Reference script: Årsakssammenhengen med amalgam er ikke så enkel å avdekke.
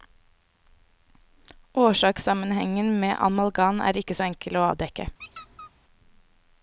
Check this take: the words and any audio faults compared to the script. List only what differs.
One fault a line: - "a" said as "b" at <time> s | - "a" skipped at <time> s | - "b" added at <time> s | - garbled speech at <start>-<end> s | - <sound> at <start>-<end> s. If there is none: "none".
- squeak at 5.2-5.7 s